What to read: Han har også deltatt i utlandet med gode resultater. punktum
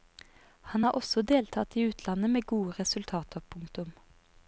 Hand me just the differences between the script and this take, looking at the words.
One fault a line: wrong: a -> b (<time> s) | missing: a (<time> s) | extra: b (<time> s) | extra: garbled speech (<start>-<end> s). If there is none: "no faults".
no faults